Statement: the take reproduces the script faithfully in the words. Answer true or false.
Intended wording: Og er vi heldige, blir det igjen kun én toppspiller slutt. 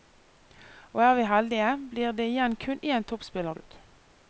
true